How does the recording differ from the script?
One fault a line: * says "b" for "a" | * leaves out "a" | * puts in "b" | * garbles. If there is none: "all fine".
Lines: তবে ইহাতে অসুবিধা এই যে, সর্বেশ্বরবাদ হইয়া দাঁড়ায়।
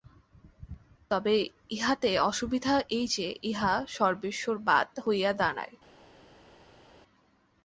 * puts in "ইহা"